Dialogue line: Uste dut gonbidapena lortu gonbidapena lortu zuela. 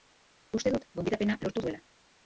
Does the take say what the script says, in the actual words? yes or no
no